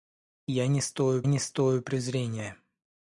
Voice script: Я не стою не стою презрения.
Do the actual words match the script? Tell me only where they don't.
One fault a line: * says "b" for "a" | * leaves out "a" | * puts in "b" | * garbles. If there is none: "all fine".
all fine